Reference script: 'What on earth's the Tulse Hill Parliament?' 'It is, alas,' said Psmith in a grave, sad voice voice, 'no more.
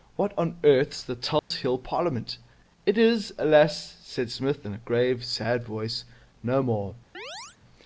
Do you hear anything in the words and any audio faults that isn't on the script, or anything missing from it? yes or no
yes